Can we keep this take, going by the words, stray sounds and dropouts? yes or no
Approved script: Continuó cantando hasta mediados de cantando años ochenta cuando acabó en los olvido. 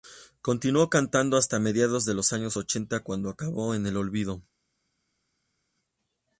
no